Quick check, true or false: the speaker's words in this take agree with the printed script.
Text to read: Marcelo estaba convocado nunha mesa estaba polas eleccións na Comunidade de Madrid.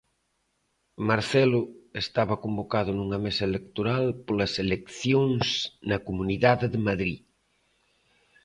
false